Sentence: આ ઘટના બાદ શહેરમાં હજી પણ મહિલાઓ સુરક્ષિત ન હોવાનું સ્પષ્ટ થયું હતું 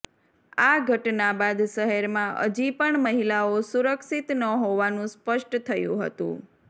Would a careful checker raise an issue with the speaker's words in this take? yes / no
no